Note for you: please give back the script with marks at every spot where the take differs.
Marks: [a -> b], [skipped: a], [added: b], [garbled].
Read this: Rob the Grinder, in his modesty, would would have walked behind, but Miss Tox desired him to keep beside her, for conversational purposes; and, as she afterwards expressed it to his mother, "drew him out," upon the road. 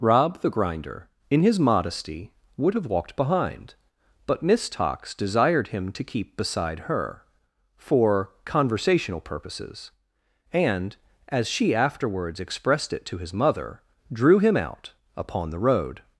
Rob the Grinder, in his modesty, would [skipped: would] have walked behind, but Miss Tox desired him to keep beside her, for conversational purposes; and, as she afterwards expressed it to his mother, "drew him out," upon the road.